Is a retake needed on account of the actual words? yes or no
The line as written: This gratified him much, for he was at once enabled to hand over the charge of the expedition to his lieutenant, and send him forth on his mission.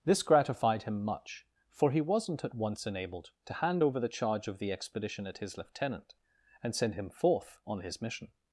yes